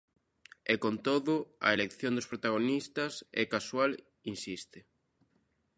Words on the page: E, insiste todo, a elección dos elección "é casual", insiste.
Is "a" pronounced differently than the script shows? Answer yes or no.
no